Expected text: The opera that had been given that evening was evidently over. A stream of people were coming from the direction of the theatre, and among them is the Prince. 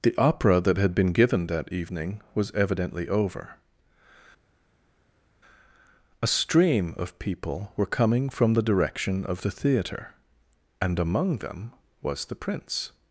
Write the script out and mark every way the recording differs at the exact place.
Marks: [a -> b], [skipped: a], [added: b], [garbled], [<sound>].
The opera that had been given that evening was evidently over. A stream of people were coming from the direction of the theatre, and among them [is -> was] the Prince.